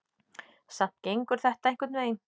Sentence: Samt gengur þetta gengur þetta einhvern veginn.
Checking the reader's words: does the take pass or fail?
fail